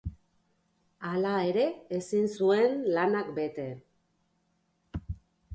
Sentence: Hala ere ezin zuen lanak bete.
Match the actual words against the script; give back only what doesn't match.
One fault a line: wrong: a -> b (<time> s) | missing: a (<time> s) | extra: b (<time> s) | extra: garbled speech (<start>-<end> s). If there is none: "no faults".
no faults